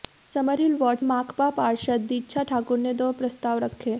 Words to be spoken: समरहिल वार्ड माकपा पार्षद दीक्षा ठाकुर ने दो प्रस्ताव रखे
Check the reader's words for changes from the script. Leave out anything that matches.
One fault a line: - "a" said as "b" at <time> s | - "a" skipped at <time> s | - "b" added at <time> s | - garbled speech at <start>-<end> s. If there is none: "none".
none